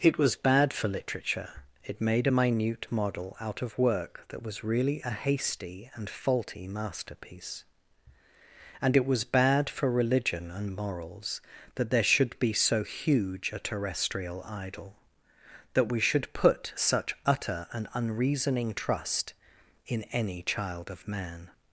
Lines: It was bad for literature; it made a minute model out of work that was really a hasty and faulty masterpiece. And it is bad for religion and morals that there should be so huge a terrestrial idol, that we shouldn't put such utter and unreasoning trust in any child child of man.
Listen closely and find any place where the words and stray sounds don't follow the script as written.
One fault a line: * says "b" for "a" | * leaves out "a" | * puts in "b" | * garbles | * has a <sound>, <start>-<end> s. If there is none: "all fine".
* says "was" for "is"
* says "should" for "shouldn't"
* leaves out "child"